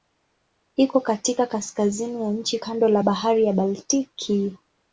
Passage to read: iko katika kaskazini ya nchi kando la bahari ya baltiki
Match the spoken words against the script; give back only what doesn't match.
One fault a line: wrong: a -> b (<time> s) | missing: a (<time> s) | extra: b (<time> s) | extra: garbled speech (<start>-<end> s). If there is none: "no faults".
no faults